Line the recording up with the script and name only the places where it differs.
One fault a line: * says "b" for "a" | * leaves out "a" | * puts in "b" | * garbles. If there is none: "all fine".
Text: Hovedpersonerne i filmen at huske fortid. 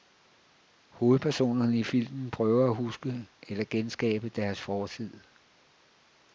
* puts in "prøver"
* puts in "eller genskabe deres"